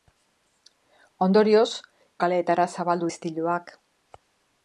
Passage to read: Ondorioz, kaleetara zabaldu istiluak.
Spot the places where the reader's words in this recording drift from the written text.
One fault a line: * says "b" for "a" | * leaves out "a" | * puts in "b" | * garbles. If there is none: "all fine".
all fine